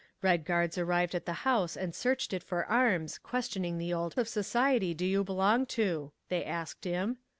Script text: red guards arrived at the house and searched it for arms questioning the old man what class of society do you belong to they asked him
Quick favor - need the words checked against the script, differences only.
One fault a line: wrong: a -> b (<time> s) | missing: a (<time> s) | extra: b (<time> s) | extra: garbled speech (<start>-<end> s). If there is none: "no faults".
missing: man what class (4.2 s)